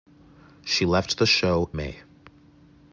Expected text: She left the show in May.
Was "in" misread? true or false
true